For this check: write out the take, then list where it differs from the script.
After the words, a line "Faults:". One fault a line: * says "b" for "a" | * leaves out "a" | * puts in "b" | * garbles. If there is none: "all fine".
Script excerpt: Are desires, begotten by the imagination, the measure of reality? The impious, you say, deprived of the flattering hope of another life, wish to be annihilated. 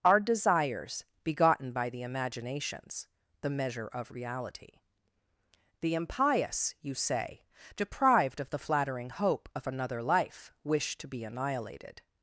Are desires, begotten by the imaginations, the measure of reality? The impious, you say, deprived of the flattering hope of another life, wish to be annihilated.
Faults:
* says "imaginations" for "imagination"